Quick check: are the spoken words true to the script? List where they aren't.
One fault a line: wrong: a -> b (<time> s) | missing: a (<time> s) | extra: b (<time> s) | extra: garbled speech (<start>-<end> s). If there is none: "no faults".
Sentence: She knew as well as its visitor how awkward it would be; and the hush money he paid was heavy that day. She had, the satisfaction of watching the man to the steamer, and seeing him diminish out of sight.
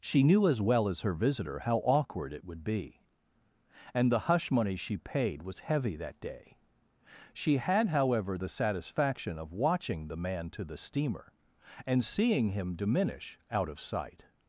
wrong: its -> her (1.0 s)
wrong: he -> she (4.8 s)
extra: however (7.9 s)